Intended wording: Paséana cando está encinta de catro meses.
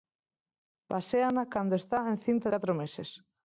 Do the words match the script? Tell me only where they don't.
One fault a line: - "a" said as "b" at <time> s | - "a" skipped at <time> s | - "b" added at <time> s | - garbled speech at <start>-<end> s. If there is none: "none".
- "de" skipped at 2.5 s